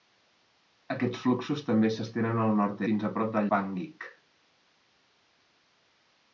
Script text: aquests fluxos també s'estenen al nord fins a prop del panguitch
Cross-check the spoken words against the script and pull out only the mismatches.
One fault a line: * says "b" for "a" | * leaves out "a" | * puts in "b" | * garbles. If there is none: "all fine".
all fine